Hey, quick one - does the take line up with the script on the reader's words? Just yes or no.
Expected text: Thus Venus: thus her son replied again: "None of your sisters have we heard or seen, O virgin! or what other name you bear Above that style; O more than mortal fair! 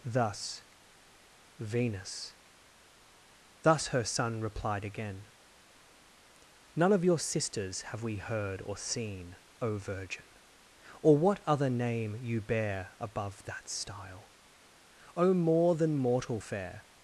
yes